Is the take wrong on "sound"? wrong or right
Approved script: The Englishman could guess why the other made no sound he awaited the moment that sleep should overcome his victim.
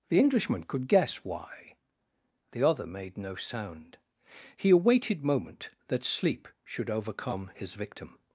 right